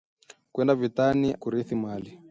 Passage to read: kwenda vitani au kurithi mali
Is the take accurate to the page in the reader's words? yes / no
no